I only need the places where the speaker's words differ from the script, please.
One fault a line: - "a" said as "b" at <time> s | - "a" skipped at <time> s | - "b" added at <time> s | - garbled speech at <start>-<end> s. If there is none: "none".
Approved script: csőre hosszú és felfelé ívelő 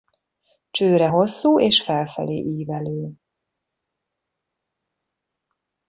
none